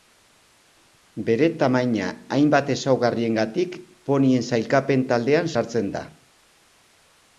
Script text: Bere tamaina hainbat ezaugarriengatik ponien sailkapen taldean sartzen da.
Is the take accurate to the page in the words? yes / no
yes